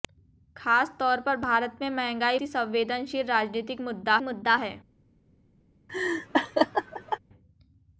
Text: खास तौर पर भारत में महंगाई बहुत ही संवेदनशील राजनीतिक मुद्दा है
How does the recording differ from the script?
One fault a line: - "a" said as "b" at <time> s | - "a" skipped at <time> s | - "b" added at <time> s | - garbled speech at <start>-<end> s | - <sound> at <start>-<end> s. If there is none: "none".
- "बहुत" skipped at 2.4 s
- "मुद्दा" added at 4.2 s
- laugh at 5.9-7.2 s